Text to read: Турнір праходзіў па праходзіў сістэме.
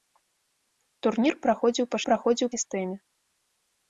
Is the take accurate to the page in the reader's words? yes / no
yes